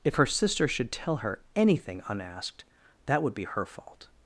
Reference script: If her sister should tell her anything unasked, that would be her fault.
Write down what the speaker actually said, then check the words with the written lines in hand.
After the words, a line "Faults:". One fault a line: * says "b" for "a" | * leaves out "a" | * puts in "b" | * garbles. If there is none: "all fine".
If her sister should tell her anything unasked, that would be her fault.
Faults:
all fine